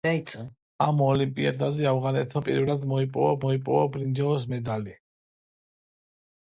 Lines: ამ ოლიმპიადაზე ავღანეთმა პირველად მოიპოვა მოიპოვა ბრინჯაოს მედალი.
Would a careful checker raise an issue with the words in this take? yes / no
no